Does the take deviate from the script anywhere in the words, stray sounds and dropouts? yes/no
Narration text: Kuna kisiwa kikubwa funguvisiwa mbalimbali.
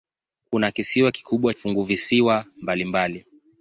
no